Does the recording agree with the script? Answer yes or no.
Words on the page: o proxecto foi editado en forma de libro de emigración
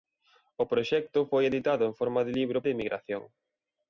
yes